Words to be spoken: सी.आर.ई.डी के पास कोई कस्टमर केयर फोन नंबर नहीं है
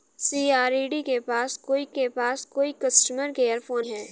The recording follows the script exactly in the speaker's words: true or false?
false